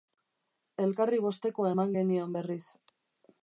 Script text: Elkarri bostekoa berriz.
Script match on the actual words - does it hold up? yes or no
no